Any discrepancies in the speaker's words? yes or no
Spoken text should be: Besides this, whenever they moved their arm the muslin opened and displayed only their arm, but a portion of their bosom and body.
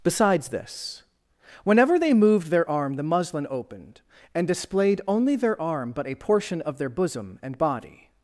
no